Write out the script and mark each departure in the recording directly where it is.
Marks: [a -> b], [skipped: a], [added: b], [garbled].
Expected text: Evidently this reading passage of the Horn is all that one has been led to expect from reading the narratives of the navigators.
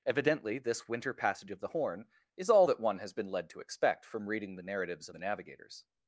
Evidently this [reading -> winter] passage of the Horn is all that one has been led to expect from reading the narratives of the navigators.